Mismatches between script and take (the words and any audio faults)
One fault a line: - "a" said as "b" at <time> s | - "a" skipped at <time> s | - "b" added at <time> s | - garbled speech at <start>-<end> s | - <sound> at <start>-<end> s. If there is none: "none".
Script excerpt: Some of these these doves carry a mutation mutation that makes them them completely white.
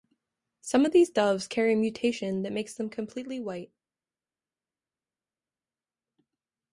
- "these" skipped at 1.1 s
- "mutation" skipped at 2.4 s
- "them" skipped at 2.9 s